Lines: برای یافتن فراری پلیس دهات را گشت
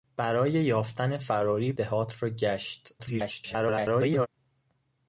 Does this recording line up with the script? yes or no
no